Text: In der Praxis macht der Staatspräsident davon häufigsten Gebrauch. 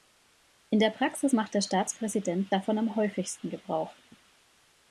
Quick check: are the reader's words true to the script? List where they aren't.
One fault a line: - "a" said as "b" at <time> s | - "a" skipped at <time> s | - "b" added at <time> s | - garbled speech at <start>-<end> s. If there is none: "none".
- "am" added at 2.8 s